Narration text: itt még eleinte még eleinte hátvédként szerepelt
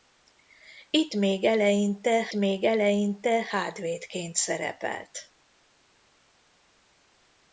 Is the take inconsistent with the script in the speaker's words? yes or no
no